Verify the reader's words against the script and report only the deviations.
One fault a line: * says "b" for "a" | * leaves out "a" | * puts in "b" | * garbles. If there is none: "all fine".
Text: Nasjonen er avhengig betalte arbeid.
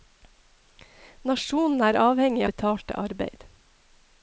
all fine